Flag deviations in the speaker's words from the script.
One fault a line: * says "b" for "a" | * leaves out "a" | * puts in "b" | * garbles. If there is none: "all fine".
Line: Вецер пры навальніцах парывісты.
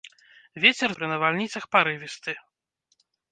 all fine